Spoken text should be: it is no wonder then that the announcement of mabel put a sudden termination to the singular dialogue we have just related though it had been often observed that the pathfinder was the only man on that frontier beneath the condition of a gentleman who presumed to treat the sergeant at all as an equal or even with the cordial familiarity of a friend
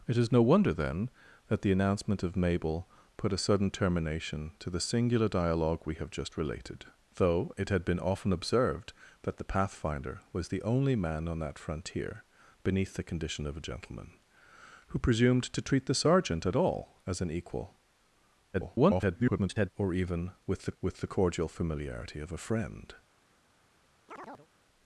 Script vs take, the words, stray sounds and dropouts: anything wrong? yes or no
yes